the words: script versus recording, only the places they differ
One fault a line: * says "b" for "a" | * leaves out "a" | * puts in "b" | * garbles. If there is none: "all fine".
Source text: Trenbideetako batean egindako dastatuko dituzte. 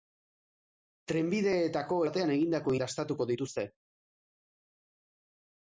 all fine